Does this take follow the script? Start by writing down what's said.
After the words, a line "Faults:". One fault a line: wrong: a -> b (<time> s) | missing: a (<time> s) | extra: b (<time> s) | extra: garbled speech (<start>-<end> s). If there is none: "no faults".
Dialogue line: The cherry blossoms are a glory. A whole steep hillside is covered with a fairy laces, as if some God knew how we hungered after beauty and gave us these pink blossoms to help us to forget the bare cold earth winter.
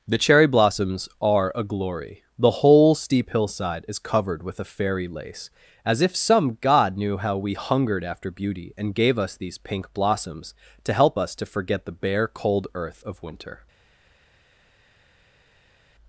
The cherry blossoms are a glory. The whole steep hillside is covered with a fairy lace, as if some God knew how we hungered after beauty and gave us these pink blossoms to help us to forget the bare cold earth of winter.
Faults:
wrong: A -> The (2.4 s)
wrong: laces -> lace (5.1 s)
extra: of (13.0 s)